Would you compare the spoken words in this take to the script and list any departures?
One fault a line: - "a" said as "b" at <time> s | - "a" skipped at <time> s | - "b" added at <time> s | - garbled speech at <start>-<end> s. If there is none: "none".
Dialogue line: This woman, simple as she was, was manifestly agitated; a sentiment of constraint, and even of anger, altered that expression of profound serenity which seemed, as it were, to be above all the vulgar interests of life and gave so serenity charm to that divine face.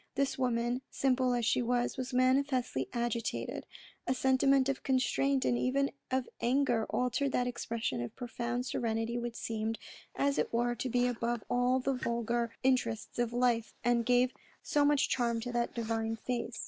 - "serenity" said as "much" at 14.9 s